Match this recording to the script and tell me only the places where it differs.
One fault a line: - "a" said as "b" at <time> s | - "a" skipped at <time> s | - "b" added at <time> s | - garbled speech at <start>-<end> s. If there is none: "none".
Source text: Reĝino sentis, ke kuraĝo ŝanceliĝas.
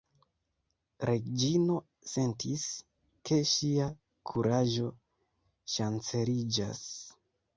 - "ŝia" added at 3.5 s